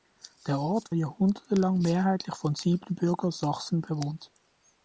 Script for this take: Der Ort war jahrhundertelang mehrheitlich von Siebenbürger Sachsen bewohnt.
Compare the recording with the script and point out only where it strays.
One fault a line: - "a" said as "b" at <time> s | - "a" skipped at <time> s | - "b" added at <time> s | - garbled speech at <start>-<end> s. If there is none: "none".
- "war" skipped at 0.9 s